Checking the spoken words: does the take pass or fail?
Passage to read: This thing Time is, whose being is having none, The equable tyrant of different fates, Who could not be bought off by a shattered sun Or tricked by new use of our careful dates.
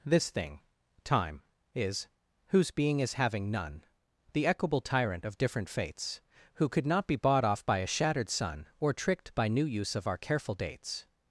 pass